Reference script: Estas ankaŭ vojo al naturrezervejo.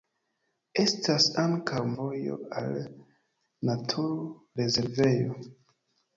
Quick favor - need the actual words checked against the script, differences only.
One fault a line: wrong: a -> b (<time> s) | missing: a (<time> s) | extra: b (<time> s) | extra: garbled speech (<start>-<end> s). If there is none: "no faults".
no faults